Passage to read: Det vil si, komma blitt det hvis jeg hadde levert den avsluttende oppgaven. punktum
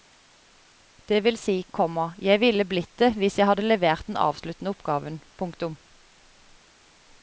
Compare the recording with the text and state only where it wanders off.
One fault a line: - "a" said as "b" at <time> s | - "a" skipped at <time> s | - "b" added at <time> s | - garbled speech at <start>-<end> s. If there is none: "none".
- "jeg ville" added at 2.3 s